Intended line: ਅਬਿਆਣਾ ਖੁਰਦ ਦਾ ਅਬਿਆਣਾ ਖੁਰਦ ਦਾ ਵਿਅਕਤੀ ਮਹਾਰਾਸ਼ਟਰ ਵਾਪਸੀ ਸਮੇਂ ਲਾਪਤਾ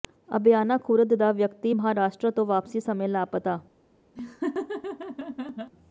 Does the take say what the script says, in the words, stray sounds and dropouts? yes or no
no